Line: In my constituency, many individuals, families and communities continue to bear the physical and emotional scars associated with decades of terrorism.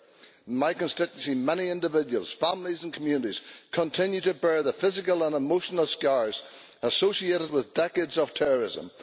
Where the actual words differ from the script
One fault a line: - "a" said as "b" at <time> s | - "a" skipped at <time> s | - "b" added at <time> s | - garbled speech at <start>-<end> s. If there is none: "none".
none